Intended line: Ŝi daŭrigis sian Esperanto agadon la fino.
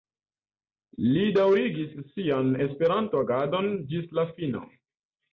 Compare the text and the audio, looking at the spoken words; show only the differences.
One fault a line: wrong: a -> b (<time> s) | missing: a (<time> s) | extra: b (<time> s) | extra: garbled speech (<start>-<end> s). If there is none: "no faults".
wrong: Ŝi -> Li (1.1 s)
extra: ĝis (3.9 s)